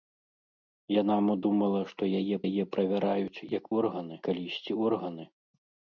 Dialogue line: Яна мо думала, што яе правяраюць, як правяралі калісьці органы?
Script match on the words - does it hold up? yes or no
no